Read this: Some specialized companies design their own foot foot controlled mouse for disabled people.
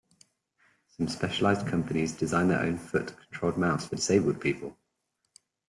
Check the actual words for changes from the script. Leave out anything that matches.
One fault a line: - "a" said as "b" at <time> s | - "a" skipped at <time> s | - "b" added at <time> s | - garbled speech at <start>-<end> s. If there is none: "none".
- "foot" skipped at 3.1 s